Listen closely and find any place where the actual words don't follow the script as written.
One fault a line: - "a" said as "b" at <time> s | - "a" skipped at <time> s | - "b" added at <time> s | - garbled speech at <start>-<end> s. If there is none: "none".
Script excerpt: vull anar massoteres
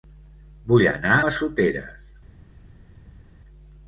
none